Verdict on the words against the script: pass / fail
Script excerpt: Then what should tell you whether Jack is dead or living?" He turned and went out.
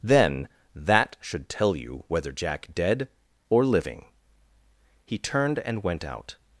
fail